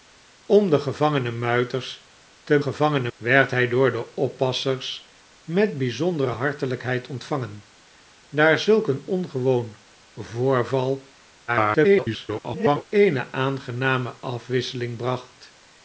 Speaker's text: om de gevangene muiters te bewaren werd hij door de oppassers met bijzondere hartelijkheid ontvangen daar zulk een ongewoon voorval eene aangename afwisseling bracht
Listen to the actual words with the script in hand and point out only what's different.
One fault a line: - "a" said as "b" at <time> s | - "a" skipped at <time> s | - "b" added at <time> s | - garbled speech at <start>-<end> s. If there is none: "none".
- "bewaren" said as "gevangene" at 2.6 s
- garbled speech at 11.5-12.9 s